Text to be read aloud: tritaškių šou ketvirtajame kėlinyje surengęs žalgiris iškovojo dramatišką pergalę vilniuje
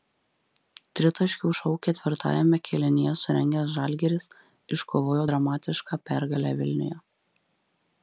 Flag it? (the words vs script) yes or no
no